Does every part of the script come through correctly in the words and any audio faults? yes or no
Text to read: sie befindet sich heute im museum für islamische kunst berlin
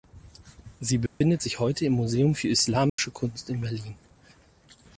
no